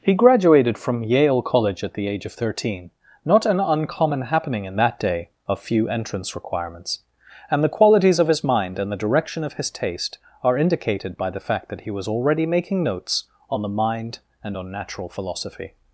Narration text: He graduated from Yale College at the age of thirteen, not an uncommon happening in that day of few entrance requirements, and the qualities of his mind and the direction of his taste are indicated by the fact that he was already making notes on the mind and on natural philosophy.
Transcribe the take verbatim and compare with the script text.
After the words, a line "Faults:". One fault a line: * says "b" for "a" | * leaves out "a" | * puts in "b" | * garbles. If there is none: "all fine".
He graduated from Yale College at the age of thirteen, not an uncommon happening in that day of few entrance requirements, and the qualities of his mind and the direction of his taste are indicated by the fact that he was already making notes on the mind and on natural philosophy.
Faults:
all fine